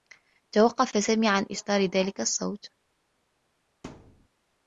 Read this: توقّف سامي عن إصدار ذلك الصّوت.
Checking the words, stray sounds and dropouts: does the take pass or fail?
fail